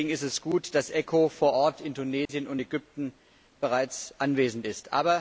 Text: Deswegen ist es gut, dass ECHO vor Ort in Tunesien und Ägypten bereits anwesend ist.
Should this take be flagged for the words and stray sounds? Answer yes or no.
yes